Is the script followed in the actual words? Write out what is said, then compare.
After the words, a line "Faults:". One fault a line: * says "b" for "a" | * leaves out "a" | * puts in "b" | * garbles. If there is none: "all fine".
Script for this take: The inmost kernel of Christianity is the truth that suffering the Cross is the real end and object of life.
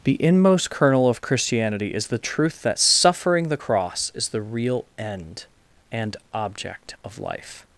The inmost kernel of Christianity is the truth that suffering the Cross is the real end and object of life.
Faults:
all fine